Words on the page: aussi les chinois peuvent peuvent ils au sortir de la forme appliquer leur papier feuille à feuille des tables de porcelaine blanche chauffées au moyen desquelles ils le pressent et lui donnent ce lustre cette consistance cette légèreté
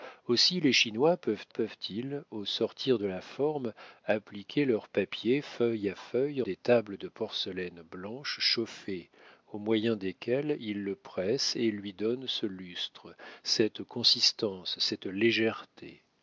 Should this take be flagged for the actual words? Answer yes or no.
no